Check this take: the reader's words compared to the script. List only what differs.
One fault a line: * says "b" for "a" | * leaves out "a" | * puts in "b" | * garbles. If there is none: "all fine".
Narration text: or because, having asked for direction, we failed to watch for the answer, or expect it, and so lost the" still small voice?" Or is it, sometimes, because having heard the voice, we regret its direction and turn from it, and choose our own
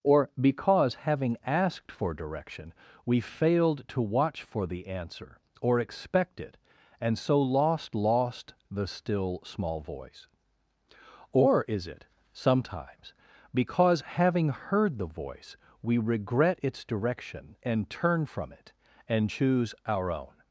* puts in "lost"